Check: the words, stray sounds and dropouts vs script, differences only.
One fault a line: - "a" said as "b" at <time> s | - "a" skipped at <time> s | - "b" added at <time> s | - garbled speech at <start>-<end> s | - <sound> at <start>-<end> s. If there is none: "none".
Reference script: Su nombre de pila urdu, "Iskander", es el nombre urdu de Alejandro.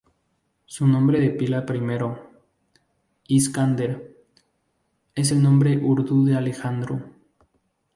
- "urdu" said as "primero" at 1.7 s